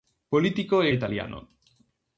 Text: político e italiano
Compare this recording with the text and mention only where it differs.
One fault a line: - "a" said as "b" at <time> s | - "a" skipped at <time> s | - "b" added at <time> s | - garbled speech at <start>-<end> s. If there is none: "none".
none